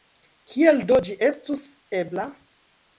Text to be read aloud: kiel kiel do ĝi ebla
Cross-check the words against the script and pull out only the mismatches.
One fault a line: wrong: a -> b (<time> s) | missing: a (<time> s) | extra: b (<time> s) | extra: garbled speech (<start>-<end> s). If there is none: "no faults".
missing: kiel (0.8 s)
extra: estus (1.3 s)